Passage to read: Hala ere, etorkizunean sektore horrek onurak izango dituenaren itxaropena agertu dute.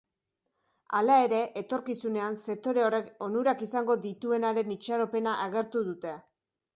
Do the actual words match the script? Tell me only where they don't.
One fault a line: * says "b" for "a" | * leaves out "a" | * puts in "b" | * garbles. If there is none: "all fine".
all fine